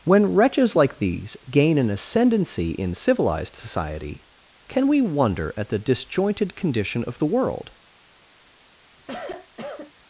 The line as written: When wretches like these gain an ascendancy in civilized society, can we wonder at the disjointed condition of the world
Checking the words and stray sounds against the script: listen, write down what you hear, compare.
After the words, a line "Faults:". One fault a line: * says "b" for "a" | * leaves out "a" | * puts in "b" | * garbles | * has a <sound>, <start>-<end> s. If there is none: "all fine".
When wretches like these gain an ascendancy in civilized society, can we wonder at the disjointed condition of the world
Faults:
* has a cough, 9.0-9.9 s